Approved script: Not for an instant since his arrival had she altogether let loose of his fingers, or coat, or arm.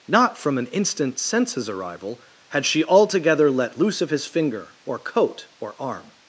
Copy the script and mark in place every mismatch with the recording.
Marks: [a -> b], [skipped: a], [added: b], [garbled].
Not [for -> from] an instant since his arrival had she altogether let loose of his [fingers, -> finger] or coat, or arm.